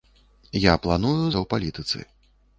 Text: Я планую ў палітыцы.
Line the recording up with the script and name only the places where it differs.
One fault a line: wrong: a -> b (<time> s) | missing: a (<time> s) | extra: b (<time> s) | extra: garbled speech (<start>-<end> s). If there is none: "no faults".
no faults